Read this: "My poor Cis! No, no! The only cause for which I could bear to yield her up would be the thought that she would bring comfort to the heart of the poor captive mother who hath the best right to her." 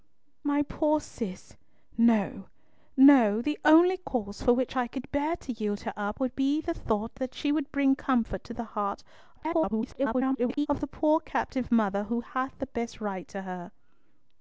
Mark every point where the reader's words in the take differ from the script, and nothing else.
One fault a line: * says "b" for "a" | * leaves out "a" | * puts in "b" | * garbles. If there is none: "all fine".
* garbles